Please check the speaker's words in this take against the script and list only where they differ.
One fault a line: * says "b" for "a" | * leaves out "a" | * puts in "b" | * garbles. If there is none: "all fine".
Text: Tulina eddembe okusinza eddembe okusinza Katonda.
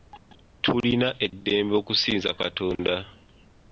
* leaves out "eddembe okusinza"